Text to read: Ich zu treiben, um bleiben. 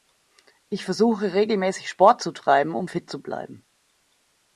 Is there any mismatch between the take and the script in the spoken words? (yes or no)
yes